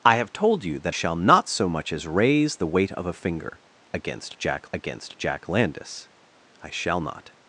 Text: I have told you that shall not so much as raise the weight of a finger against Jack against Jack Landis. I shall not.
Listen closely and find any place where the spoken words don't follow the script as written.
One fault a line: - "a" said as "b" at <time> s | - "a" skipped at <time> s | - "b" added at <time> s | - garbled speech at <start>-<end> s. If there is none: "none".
none